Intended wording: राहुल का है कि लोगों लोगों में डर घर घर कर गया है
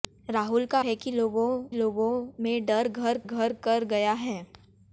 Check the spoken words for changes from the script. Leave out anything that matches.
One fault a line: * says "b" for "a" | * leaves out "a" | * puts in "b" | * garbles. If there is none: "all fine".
all fine